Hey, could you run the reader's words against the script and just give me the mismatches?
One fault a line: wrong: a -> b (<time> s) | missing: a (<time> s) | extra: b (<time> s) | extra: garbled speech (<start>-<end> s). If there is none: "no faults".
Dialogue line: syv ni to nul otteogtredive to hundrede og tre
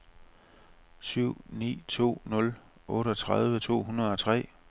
no faults